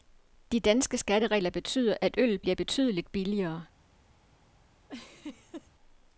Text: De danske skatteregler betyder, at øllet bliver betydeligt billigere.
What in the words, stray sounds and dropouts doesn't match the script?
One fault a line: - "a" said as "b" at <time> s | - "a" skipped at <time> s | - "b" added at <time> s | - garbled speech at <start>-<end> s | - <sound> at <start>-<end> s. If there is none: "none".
- laugh at 4.9-5.7 s